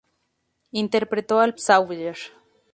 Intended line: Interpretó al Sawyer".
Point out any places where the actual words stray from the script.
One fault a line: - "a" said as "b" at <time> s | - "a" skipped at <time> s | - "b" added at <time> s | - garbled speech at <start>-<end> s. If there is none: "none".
none